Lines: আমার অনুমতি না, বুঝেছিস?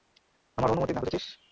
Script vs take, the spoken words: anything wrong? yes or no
no